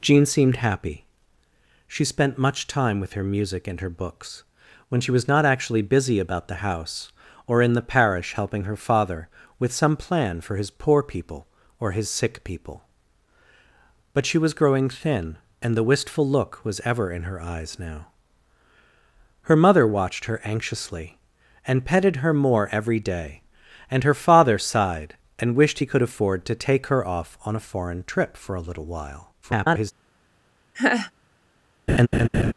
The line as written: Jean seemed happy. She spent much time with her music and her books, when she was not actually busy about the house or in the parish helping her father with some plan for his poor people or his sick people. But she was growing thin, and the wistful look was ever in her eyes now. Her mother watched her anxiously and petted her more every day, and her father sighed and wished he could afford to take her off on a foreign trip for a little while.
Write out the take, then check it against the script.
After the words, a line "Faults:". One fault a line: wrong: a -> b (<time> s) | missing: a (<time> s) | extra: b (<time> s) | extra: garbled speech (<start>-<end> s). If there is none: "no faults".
Jean seemed happy. She spent much time with her music and her books, when she was not actually busy about the house or in the parish helping her father with some plan for his poor people or his sick people. But she was growing thin, and the wistful look was ever in her eyes now. Her mother watched her anxiously and petted her more every day, and her father sighed and wished he could afford to take her off on a foreign trip for a little while. [garbled]
Faults:
extra: garbled speech (29.4-29.9 s)